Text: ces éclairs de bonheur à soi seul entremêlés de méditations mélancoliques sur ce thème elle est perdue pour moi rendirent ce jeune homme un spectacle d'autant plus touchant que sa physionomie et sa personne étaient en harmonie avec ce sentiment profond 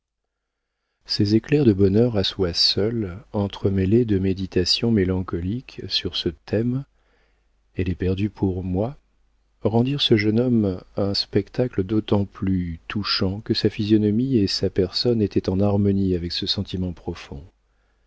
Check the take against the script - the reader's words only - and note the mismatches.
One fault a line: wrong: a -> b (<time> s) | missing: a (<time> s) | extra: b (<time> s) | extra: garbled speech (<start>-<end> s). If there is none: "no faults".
no faults